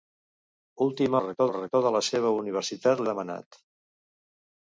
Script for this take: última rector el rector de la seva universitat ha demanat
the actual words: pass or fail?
pass